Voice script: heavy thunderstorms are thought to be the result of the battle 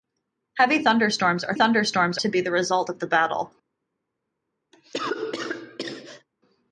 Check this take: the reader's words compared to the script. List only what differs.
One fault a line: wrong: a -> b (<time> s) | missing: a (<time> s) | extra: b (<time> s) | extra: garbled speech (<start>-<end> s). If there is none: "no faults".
wrong: thought -> thunderstorms (1.6 s)